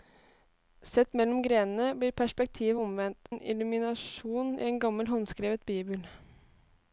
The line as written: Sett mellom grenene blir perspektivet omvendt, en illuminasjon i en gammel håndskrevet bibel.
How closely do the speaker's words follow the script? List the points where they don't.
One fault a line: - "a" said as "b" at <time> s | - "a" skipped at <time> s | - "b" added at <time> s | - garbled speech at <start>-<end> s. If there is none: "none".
none